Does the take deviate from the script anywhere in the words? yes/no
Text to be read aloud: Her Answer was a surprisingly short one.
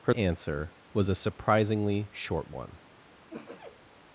no